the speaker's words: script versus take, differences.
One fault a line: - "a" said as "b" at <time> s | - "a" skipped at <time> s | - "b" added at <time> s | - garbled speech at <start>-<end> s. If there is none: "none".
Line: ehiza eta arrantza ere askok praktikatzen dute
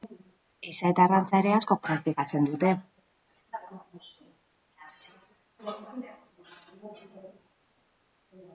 none